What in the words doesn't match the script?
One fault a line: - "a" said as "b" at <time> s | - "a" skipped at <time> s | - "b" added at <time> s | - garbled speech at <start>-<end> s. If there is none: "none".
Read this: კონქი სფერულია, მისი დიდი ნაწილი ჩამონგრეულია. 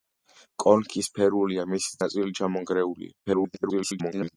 - "დიდი" skipped at 2.0 s
- garbled speech at 3.3-4.4 s